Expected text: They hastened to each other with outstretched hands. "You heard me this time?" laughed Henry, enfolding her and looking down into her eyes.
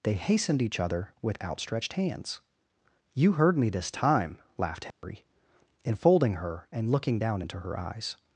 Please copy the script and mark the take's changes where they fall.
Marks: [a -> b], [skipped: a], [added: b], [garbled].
They hastened [skipped: to] each other with outstretched hands. "You heard me this time?" laughed Henry, enfolding her and looking down into her eyes.